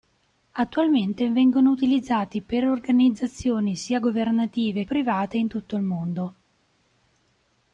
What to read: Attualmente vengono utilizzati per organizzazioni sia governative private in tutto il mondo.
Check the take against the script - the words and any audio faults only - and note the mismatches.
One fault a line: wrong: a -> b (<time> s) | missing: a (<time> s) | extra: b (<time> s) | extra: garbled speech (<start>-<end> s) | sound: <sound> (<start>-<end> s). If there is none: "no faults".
no faults